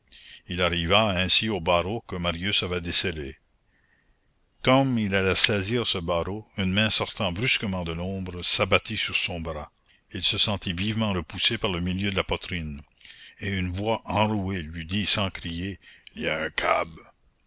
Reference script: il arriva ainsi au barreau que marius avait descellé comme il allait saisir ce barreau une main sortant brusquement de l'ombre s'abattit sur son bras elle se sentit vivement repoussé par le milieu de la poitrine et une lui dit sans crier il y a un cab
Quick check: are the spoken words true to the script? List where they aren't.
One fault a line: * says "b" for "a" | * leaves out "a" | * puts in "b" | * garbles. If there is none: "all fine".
* says "il" for "elle"
* puts in "voix enrouée"